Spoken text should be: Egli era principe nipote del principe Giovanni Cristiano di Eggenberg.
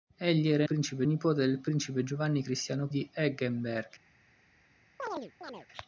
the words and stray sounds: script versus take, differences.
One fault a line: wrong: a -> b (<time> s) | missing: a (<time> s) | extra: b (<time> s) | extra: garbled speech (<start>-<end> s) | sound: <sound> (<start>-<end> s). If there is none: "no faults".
sound: chirp (5.0-5.7 s)